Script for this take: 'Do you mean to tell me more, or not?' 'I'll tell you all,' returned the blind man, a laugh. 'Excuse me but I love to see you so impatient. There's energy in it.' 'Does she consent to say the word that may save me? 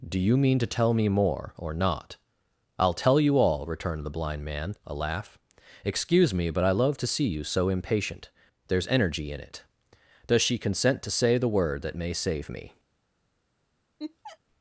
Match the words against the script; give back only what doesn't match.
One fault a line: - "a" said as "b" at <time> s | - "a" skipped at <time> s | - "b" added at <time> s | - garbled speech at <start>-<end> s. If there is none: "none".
none